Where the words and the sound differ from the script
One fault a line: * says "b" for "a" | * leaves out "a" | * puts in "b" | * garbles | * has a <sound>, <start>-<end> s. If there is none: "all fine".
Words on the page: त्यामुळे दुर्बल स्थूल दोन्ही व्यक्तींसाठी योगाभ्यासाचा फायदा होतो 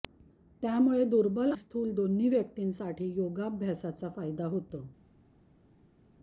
all fine